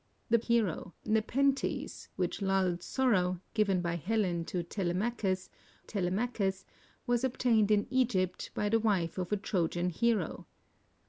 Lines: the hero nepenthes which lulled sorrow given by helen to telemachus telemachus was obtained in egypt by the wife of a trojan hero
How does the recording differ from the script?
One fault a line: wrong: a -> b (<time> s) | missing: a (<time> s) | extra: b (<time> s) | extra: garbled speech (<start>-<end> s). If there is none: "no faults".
no faults